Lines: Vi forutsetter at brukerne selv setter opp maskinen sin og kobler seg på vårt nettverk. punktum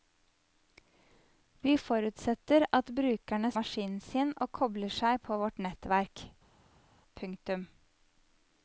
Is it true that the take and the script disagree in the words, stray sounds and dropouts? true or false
true